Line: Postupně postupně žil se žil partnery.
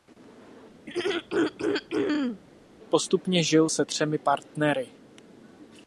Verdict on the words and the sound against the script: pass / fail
fail